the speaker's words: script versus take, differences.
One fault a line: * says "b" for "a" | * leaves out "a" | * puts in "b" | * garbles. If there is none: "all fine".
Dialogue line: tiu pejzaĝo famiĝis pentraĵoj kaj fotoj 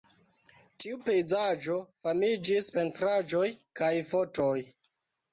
all fine